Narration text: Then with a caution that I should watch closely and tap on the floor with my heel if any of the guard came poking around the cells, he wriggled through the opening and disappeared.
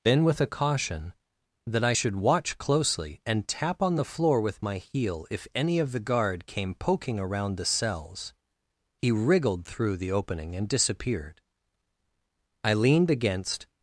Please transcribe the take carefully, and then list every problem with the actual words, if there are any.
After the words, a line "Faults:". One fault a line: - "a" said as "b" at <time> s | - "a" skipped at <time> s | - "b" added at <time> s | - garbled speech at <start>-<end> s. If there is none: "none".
Then with a caution that I should watch closely and tap on the floor with my heel if any of the guard came poking around the cells, he wriggled through the opening and disappeared. I leaned against
Faults:
- "I leaned against" added at 12.6 s